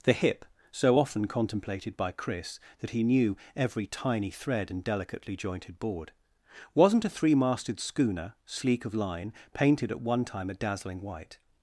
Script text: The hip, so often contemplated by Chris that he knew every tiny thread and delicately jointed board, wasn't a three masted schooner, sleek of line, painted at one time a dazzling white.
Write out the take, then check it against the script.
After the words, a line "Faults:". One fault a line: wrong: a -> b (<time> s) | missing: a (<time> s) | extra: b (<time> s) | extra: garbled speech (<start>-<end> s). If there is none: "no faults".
The hip, so often contemplated by Chris that he knew every tiny thread and delicately jointed board, wasn't a three masted schooner, sleek of line, painted at one time a dazzling white.
Faults:
no faults